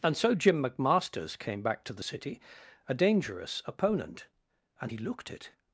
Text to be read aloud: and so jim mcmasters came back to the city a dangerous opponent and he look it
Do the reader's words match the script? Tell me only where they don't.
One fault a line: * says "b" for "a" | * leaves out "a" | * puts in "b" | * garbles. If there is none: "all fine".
* says "looked" for "look"